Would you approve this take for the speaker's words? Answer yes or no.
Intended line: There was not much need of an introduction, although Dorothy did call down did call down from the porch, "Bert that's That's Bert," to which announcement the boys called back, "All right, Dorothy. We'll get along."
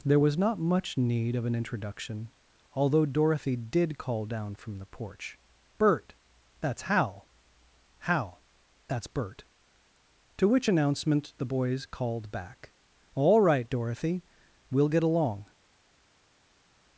no